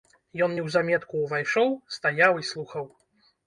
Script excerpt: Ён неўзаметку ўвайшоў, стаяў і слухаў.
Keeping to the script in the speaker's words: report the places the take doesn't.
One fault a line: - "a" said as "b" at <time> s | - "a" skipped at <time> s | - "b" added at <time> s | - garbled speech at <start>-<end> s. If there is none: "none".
none